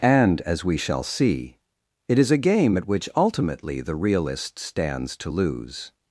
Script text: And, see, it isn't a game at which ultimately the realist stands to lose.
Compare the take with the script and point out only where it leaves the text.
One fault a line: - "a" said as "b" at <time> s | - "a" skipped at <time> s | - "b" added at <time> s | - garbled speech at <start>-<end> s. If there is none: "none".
- "as we shall" added at 0.4 s
- "isn't" said as "is" at 2.2 s